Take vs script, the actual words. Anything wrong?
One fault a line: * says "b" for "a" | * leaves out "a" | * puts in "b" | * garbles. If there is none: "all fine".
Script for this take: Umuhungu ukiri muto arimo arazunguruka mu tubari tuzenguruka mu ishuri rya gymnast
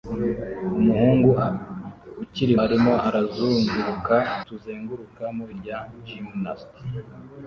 * leaves out "muto"
* leaves out "mu tubari"
* leaves out "ishuri"